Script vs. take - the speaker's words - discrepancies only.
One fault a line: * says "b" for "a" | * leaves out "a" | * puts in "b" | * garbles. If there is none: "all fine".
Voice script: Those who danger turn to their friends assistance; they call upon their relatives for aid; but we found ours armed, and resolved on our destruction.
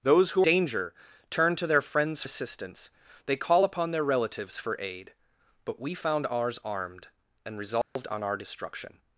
all fine